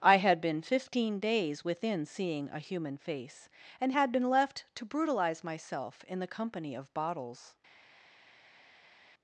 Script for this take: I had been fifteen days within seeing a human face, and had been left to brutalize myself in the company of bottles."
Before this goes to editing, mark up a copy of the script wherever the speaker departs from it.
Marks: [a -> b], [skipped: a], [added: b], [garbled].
I had been fifteen days within seeing a human face, and had been left to brutalize myself in the company of bottles."